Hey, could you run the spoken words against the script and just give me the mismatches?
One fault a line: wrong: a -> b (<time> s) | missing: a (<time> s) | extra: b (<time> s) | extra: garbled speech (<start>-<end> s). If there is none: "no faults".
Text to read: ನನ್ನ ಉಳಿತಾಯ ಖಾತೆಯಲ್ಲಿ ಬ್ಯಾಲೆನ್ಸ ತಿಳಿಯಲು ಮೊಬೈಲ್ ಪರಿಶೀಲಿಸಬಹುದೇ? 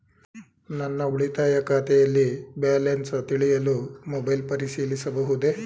no faults